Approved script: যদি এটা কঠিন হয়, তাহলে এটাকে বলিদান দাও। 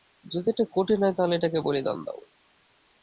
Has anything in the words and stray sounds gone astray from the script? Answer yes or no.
no